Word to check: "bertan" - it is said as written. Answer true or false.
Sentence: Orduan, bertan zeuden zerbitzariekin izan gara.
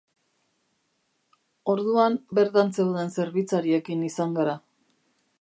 true